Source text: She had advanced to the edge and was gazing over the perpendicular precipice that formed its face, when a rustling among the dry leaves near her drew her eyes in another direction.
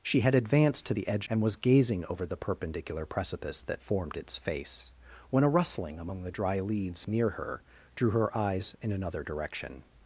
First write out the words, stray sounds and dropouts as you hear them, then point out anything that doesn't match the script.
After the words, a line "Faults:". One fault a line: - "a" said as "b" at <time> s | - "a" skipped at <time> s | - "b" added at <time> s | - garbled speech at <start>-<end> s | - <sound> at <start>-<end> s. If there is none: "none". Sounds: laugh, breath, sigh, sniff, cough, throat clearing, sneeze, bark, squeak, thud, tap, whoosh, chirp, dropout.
She had advanced to the edge and was gazing over the perpendicular precipice that formed its face, when a rustling among the dry leaves near her drew her eyes in another direction.
Faults:
none